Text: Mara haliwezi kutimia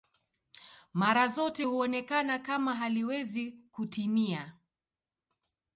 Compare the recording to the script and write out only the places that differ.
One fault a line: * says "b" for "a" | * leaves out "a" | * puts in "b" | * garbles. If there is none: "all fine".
* puts in "zote huonekana kama"